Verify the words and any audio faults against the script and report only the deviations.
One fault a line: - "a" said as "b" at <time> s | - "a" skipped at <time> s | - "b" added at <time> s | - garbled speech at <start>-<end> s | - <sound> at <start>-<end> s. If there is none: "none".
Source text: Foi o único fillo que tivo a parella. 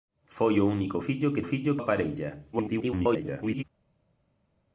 - "tivo" said as "fillo" at 1.4 s
- garbled speech at 2.5-3.6 s